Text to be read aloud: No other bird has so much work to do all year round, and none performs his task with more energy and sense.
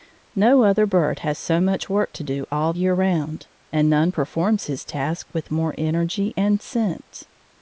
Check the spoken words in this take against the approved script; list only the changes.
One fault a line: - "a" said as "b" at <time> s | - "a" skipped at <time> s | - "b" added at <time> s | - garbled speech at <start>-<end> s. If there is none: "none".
none